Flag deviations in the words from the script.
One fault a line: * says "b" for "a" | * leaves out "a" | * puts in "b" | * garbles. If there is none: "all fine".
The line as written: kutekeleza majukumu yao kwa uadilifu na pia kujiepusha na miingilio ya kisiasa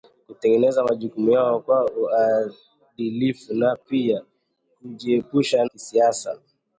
* leaves out "na miingilio ya"